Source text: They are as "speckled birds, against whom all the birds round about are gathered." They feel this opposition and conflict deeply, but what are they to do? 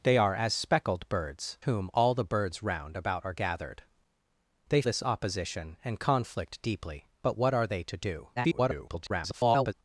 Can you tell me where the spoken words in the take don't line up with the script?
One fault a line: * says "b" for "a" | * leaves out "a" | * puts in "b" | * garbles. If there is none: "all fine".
* leaves out "against"
* leaves out "feel"
* garbles